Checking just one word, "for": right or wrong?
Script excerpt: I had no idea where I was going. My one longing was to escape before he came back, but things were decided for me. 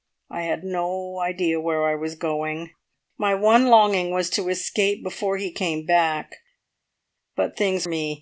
wrong